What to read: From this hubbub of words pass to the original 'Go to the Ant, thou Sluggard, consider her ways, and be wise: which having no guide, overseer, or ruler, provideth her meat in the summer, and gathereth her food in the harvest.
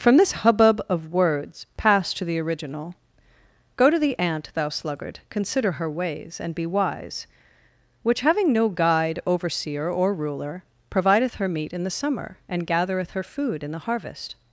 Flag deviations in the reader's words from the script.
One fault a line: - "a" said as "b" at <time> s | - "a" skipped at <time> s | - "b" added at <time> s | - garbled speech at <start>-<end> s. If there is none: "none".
none